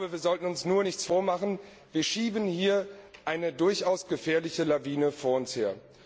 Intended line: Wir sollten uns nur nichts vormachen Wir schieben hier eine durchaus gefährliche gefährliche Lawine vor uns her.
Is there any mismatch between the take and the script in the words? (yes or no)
yes